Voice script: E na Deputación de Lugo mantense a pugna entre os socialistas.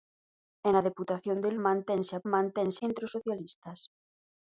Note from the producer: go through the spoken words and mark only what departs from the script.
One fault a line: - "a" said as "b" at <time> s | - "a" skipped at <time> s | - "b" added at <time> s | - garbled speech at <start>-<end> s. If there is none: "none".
- "Lugo" skipped at 1.5 s
- "pugna" said as "mantense" at 2.3 s